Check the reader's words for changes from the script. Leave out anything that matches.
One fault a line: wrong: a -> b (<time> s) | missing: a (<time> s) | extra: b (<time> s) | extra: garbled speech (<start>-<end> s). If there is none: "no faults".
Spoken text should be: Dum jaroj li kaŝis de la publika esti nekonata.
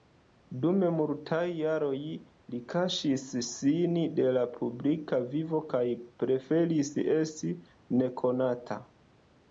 extra: multaj (1.0 s)
extra: sin (3.5 s)
extra: vivo kaj preferis (5.3 s)